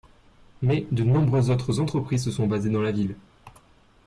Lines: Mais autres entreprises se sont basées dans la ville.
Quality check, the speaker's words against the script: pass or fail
fail